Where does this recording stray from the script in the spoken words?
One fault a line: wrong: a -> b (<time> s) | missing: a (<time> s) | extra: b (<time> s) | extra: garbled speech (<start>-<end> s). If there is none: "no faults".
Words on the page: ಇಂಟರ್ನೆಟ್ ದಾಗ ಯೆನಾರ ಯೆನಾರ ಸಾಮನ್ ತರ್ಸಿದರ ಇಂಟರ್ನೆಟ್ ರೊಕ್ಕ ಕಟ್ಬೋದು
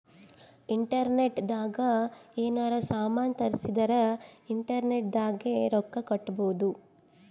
missing: ಯೆನಾರ (2.7 s)
extra: ದಾಗೆ (5.1 s)